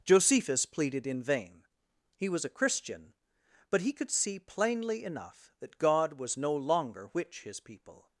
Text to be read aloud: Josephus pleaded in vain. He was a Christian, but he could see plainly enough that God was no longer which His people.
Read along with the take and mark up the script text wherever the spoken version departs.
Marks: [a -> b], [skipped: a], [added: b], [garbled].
Josephus pleaded in vain. He was a Christian, but he could see plainly enough that God was no longer which His people.